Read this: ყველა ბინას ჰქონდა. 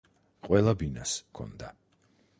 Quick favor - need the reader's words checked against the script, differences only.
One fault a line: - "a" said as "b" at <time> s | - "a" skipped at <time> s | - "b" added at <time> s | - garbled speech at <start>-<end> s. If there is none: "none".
none